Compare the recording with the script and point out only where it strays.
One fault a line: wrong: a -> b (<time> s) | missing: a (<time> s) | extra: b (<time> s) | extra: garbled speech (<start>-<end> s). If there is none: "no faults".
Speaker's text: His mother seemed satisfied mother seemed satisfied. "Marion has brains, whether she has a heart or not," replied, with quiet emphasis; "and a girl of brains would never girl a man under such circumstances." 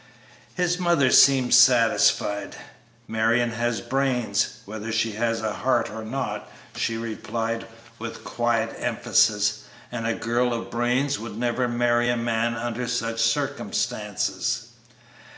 missing: mother seemed satisfied (2.5 s)
extra: she (6.8 s)
wrong: girl -> marry (11.7 s)